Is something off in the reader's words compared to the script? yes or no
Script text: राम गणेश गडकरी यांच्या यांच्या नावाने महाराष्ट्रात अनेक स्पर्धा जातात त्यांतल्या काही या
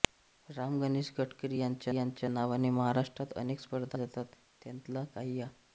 no